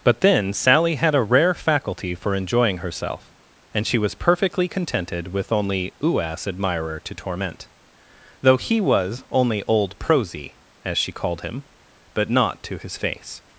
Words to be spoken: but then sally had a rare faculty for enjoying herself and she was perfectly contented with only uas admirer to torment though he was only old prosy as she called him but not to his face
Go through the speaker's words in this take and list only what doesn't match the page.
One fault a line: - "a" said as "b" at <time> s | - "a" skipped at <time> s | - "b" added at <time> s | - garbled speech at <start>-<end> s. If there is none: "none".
none